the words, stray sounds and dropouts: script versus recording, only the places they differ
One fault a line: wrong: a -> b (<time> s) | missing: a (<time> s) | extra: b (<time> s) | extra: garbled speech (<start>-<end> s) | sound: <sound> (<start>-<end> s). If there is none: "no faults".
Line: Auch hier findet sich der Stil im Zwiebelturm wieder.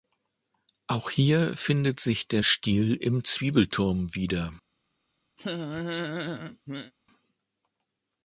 sound: laugh (5.4-6.9 s)